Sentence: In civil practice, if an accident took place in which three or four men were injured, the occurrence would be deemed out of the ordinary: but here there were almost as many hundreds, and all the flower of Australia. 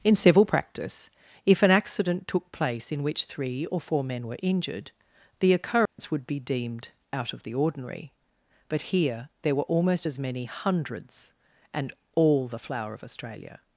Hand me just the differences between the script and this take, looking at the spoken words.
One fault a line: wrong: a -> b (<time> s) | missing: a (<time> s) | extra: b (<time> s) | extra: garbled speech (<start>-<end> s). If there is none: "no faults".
no faults